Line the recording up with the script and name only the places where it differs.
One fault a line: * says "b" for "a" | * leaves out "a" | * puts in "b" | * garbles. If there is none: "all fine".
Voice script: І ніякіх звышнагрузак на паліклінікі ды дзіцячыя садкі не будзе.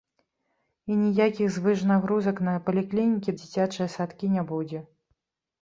* leaves out "ды"